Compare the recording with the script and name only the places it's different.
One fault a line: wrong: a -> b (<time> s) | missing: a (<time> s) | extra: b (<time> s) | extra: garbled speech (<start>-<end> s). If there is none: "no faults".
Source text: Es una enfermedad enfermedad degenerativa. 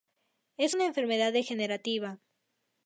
missing: enfermedad (1.3 s)